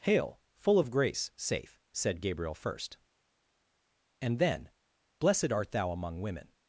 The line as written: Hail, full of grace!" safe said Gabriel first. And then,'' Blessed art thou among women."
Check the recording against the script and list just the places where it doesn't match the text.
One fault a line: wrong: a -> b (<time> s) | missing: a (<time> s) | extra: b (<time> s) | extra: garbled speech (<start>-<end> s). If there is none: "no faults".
no faults